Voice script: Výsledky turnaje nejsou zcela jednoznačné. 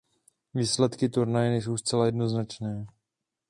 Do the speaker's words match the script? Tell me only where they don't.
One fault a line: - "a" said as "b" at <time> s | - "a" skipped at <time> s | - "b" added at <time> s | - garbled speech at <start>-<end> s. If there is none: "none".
none